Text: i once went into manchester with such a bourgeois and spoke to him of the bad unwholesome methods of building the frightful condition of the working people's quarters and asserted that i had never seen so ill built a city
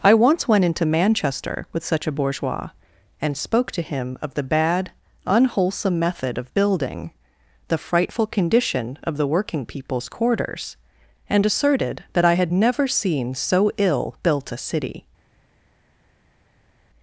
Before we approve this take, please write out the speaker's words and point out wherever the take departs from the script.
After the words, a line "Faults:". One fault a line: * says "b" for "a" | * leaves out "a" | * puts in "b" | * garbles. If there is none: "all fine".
i once went into manchester with such a bourgeois and spoke to him of the bad unwholesome method of building the frightful condition of the working people's quarters and asserted that i had never seen so ill built a city
Faults:
* says "method" for "methods"